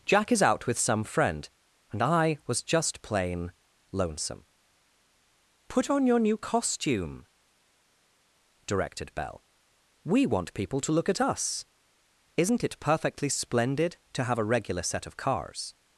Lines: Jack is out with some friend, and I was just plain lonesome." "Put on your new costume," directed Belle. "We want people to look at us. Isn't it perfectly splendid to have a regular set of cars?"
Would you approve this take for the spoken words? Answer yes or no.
yes